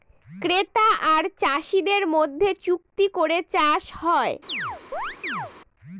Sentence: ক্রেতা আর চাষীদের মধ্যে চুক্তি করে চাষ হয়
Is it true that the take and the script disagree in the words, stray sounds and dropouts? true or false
true